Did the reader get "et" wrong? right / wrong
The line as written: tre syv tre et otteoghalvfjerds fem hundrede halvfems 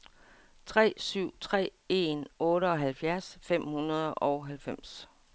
wrong